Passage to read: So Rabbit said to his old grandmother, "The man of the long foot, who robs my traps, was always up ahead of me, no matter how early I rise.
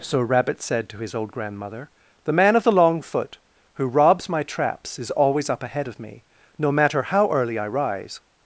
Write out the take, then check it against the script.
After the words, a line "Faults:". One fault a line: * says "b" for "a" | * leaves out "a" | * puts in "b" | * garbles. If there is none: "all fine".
So Rabbit said to his old grandmother, "The man of the long foot, who robs my traps, is always up ahead of me, no matter how early I rise.
Faults:
* says "is" for "was"